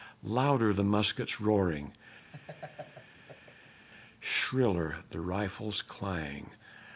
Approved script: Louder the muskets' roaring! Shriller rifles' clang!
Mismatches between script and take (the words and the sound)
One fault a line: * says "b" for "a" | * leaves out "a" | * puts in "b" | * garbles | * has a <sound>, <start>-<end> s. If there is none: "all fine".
* has a laugh, 2.3-3.9 s
* puts in "the"